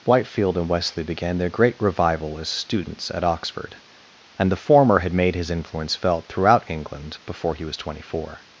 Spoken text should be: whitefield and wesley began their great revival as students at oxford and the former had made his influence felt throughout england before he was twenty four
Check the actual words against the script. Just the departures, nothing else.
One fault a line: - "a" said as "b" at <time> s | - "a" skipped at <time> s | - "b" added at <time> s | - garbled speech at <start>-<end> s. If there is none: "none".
none